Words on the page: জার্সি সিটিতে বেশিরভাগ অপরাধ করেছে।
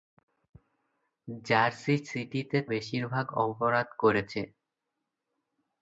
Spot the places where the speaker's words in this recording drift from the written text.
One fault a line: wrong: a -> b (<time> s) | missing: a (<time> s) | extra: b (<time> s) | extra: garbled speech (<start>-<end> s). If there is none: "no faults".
no faults